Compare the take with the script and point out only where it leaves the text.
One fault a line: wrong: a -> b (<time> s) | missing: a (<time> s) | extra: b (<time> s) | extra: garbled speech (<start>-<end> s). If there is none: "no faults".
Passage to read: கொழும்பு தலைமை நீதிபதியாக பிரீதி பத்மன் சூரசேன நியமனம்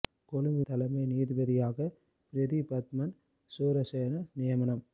no faults